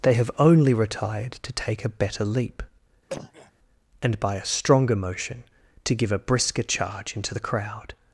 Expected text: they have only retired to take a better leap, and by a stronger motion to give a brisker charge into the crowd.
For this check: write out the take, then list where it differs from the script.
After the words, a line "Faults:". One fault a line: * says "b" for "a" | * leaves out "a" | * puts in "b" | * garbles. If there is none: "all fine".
they have only retired to take a better leap, and by a stronger motion to give a brisker charge into the crowd.
Faults:
all fine